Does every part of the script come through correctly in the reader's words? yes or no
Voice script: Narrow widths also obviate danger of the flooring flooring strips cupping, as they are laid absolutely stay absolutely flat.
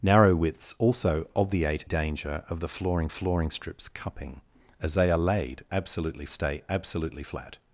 yes